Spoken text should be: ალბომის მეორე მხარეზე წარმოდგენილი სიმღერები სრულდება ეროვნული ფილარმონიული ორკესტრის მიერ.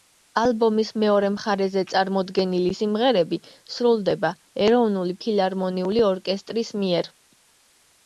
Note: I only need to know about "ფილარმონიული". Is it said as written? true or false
true